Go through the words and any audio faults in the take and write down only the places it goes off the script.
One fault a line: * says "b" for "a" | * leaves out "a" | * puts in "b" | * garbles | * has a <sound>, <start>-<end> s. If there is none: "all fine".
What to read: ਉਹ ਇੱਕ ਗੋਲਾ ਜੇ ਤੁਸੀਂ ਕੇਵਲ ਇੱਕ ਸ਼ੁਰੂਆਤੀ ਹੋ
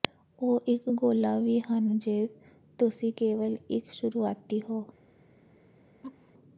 * puts in "ਵੀ ਹਨ"
* has a laugh, 6.0-6.3 s